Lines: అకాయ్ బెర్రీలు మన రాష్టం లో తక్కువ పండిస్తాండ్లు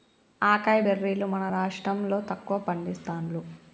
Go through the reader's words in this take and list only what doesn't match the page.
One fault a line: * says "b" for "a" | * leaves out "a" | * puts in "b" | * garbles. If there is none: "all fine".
all fine